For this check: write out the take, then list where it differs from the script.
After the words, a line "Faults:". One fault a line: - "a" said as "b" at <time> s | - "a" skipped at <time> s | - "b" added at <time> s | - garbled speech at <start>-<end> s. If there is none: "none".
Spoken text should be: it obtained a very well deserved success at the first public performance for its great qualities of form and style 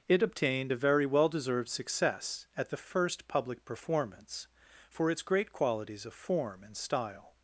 it obtained a very well deserved success at the first public performance for its great qualities of form and style
Faults:
none